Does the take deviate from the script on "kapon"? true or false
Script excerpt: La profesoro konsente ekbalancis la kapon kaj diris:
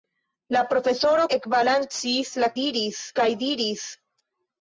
true